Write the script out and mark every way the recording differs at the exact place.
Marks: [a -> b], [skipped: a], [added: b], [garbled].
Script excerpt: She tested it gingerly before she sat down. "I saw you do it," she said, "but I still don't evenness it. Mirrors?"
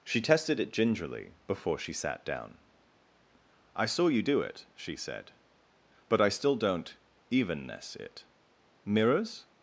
She tested it gingerly before she sat down. "I saw you do it," she said, "but I still don't evenness it. Mirrors?"